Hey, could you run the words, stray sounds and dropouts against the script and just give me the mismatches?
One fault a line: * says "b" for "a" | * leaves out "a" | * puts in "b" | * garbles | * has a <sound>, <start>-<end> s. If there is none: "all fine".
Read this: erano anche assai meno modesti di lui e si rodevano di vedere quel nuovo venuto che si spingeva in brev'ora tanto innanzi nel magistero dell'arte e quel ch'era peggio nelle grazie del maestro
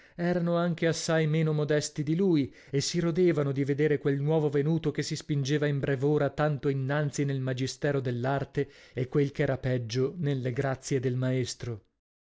all fine